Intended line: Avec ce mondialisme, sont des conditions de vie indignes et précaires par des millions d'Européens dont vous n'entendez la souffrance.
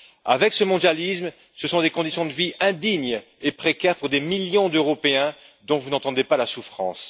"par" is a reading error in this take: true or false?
true